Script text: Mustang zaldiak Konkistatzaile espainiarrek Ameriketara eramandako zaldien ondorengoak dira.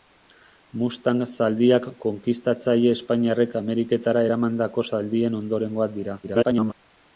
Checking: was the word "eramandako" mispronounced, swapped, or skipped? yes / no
no